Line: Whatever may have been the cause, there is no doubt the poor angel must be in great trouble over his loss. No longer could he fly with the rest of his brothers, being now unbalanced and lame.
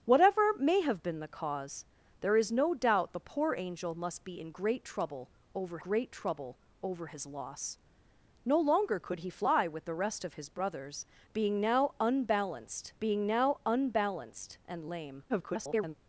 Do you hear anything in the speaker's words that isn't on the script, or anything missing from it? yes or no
yes